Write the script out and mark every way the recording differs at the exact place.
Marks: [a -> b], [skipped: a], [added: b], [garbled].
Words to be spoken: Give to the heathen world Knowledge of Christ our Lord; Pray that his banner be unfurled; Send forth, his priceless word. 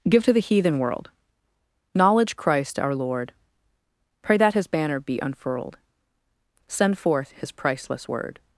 Give to the heathen world Knowledge [skipped: of] Christ our Lord; Pray that his banner be unfurled; Send forth, his priceless word.